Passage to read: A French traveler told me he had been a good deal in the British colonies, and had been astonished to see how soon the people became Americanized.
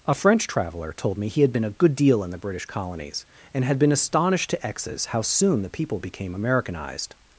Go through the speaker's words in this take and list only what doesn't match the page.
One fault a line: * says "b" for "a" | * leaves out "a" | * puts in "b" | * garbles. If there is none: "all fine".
* says "exes" for "see"